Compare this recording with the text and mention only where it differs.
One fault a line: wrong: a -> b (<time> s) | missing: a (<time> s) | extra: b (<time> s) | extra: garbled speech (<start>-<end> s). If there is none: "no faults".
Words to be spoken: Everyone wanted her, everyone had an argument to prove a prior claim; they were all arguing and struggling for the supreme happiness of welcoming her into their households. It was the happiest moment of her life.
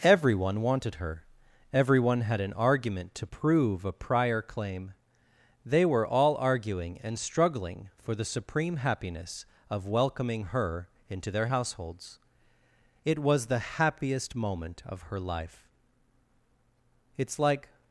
extra: It's like (17.2 s)